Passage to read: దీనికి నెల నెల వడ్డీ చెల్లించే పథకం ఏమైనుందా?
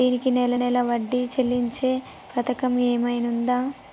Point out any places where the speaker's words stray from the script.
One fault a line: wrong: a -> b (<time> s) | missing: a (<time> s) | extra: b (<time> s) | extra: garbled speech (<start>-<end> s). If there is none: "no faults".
no faults